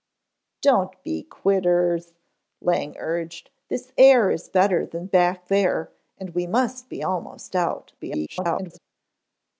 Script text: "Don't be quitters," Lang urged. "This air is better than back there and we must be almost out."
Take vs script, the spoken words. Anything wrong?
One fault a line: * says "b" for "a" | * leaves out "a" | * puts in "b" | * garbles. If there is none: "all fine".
* garbles